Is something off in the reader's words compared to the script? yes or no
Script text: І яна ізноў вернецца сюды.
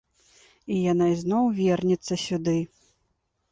no